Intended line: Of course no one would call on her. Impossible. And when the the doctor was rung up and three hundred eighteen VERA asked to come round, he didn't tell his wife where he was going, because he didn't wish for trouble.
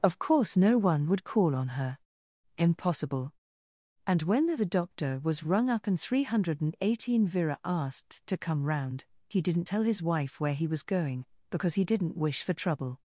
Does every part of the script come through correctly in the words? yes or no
yes